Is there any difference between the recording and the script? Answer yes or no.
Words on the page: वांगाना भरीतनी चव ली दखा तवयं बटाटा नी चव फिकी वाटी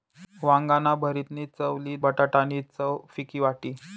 yes